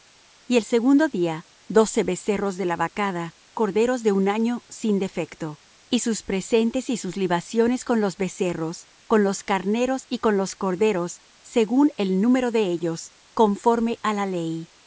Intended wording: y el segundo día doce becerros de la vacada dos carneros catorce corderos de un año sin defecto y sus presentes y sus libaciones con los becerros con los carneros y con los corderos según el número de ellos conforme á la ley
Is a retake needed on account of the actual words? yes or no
yes